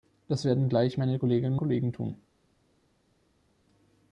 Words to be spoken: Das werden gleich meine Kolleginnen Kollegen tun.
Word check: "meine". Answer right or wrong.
right